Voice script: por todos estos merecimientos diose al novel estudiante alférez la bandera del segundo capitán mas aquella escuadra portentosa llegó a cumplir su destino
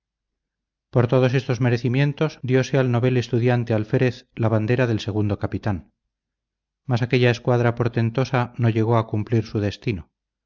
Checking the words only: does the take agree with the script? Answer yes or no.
no